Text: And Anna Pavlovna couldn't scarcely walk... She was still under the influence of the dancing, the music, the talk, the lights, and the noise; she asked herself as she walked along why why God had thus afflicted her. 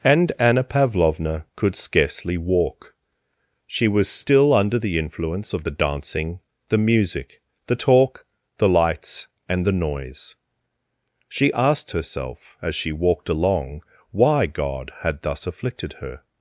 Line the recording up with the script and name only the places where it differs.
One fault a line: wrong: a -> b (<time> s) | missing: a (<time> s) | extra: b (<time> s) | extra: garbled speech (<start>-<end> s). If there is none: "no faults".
wrong: couldn't -> could (1.6 s)
missing: why (14.5 s)